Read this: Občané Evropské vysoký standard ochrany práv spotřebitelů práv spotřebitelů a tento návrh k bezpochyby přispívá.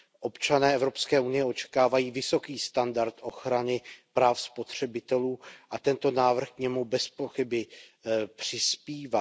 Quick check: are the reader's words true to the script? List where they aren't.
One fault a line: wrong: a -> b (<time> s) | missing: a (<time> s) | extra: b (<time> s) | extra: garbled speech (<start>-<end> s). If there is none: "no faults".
extra: unie očekávají (1.2 s)
missing: práv spotřebitelů (5.4 s)
extra: němu (6.6 s)